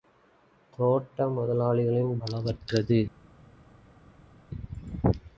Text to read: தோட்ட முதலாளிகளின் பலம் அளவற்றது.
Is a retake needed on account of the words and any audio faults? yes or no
yes